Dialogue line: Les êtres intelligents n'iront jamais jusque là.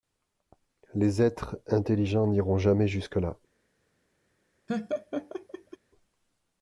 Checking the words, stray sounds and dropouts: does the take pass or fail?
fail